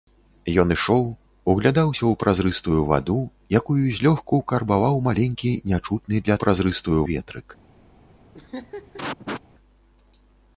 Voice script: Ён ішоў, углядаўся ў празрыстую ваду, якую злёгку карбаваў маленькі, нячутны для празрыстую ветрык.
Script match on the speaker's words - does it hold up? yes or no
yes